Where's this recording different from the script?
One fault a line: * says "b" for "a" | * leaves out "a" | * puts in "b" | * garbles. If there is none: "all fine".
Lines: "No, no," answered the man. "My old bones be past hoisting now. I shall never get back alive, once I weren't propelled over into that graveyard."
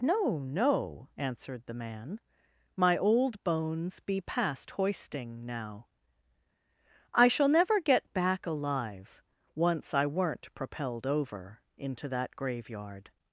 all fine